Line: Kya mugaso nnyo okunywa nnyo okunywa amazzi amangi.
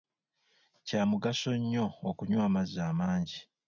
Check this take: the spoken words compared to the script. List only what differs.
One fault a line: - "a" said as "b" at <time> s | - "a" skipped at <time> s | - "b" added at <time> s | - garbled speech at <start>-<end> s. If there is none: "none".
- "nnyo okunywa" skipped at 2.4 s